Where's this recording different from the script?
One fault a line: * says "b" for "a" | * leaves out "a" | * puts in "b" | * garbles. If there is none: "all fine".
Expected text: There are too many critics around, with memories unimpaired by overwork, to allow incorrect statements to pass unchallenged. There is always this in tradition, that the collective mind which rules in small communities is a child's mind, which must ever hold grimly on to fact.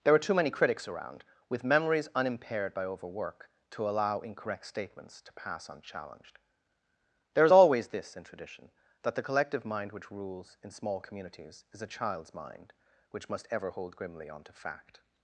all fine